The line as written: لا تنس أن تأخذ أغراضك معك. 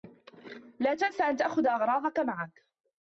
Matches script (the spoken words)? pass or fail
pass